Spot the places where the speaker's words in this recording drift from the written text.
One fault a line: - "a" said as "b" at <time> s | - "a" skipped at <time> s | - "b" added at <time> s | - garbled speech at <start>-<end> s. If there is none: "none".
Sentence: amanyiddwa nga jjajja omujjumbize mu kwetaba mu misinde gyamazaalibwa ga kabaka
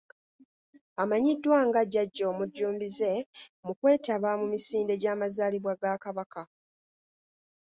none